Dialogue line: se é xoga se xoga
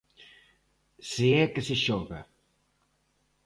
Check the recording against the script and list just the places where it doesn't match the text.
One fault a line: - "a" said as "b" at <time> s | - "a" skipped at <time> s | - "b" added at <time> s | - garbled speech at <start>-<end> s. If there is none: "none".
- "xoga" said as "que" at 1.5 s